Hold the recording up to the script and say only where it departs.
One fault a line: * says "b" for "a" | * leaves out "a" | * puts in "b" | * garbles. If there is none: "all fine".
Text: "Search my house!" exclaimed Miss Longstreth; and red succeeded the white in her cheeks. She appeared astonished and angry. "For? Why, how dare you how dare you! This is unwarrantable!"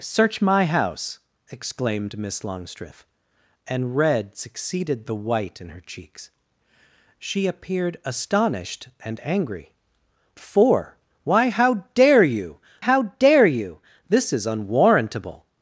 all fine